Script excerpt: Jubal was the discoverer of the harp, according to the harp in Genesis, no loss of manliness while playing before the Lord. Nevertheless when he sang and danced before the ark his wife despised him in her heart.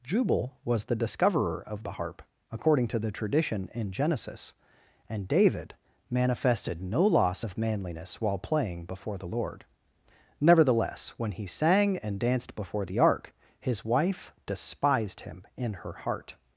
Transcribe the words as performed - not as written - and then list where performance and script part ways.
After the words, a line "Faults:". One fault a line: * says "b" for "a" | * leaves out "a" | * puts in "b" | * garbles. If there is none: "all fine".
Jubal was the discoverer of the harp, according to the tradition in Genesis, and David manifested no loss of manliness while playing before the Lord. Nevertheless when he sang and danced before the ark his wife despised him in her heart.
Faults:
* says "tradition" for "harp"
* puts in "and David manifested"